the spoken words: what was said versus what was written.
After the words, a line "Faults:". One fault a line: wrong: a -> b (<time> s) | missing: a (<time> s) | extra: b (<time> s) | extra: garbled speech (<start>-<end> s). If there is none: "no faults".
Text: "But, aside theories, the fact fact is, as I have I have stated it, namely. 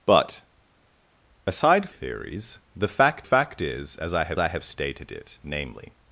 "But, aside theories, the fact fact is, as I have I have stated it, namely.
Faults:
no faults